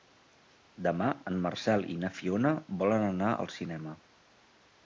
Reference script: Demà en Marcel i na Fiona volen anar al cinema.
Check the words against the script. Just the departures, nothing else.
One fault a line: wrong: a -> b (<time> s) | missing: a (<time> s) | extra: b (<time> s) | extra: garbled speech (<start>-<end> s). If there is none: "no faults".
no faults